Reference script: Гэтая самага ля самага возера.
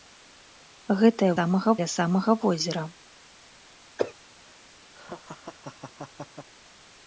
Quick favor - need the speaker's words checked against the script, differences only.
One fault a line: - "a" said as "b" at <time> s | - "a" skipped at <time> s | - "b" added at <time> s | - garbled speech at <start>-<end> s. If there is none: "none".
none